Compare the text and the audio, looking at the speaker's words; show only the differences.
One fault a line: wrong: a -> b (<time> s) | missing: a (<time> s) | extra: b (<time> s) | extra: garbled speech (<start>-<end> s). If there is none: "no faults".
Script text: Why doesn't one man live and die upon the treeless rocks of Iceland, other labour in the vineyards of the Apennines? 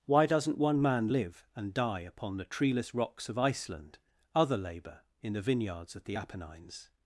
no faults